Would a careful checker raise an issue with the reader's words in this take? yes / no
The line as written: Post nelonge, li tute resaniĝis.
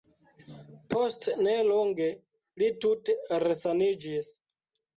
no